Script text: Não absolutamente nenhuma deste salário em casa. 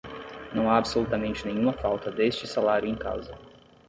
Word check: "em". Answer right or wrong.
right